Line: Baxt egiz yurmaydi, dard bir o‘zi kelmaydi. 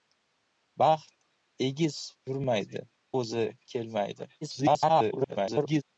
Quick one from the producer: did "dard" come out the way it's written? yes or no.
no